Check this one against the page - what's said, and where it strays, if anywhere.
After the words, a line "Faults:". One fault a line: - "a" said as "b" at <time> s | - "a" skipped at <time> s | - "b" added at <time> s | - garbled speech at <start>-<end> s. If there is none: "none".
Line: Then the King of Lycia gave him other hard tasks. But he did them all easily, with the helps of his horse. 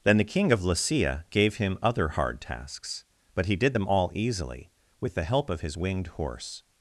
Then the King of Lycia gave him other hard tasks. But he did them all easily, with the help of his winged horse.
Faults:
- "helps" said as "help" at 5.2 s
- "winged" added at 5.7 s